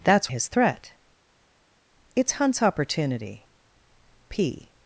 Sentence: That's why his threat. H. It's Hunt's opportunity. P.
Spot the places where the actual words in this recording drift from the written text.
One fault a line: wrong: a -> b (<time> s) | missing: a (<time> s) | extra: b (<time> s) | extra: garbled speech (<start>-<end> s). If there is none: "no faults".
missing: why (0.3 s)
missing: H (0.9 s)